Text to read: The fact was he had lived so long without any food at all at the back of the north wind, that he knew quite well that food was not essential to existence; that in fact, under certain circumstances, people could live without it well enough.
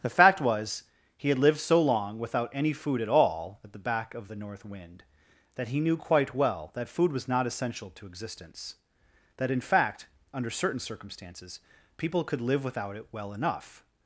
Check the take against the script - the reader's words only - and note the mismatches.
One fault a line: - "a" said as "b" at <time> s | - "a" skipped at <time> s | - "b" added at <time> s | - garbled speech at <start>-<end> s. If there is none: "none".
none